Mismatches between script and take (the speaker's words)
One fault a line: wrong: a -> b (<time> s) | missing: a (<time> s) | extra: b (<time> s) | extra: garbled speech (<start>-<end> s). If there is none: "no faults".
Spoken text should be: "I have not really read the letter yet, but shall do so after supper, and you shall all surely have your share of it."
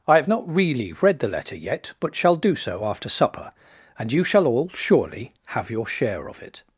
no faults